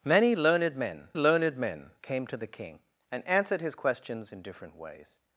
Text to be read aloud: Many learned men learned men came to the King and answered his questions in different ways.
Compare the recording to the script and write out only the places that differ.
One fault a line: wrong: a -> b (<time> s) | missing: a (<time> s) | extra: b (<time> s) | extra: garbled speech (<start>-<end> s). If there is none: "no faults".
no faults